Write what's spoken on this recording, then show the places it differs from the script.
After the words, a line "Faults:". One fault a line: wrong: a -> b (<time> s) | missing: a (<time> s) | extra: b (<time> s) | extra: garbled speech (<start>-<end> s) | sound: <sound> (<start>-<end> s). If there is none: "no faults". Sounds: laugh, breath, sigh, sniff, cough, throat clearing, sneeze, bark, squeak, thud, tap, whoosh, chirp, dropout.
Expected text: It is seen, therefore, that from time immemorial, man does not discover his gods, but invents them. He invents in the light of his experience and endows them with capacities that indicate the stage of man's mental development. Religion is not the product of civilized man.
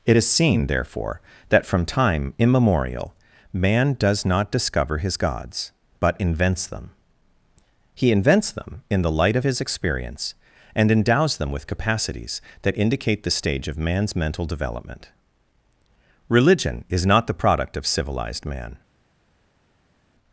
It is seen, therefore, that from time immemorial, man does not discover his gods, but invents them. He invents them in the light of his experience and endows them with capacities that indicate the stage of man's mental development. Religion is not the product of civilized man.
Faults:
extra: them (8.5 s)